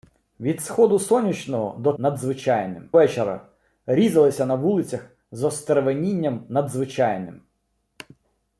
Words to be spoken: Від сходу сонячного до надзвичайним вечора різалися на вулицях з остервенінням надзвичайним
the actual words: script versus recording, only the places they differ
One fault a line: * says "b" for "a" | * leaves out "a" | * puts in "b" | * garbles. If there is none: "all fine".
all fine